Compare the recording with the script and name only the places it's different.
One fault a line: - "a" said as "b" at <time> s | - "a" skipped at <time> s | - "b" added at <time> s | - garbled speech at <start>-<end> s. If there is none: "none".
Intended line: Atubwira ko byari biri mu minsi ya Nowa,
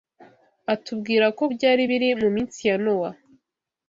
none